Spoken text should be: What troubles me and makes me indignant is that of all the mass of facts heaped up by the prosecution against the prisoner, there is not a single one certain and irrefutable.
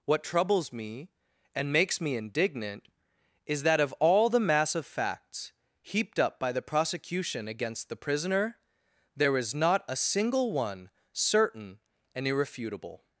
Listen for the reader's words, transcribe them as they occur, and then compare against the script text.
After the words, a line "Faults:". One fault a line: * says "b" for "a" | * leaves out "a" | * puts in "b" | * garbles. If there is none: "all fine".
What troubles me and makes me indignant is that of all the mass of facts heaped up by the prosecution against the prisoner, there is not a single one certain and irrefutable.
Faults:
all fine